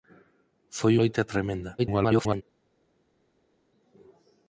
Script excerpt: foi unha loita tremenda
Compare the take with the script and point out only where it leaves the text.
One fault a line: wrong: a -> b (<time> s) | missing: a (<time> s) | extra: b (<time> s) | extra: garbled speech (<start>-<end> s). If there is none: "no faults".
missing: unha (0.9 s)
extra: garbled speech (1.8-2.4 s)